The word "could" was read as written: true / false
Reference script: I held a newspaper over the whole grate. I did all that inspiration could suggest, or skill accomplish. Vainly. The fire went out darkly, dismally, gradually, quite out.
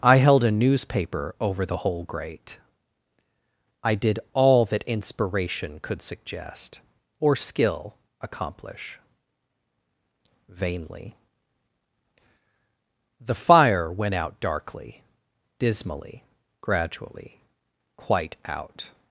true